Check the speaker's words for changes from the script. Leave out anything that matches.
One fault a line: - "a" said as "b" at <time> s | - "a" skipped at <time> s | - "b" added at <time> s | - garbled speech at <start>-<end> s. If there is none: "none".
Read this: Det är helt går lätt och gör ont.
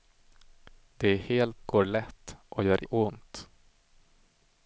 none